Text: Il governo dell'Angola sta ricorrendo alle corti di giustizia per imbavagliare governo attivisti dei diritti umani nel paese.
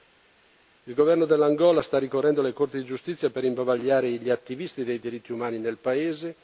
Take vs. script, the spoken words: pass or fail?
fail